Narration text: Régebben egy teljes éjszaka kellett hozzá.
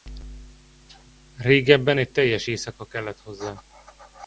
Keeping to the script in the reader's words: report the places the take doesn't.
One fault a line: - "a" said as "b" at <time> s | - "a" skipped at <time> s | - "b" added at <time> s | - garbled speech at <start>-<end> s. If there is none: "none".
none